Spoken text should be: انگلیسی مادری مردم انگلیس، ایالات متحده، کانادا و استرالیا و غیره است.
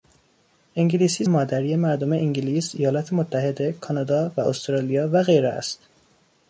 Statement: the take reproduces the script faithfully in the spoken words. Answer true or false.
true